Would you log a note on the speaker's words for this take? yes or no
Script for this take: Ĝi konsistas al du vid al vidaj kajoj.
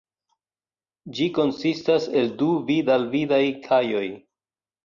yes